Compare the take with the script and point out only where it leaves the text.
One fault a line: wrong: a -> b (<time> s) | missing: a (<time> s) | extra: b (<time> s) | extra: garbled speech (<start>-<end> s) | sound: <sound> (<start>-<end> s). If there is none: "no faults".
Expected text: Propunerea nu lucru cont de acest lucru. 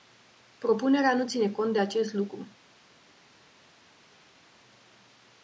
wrong: lucru -> ține (1.3 s)